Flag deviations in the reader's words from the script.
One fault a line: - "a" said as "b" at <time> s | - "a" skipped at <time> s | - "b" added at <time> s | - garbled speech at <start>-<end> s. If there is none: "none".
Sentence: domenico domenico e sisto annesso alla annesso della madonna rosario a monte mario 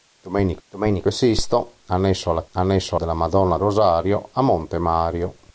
none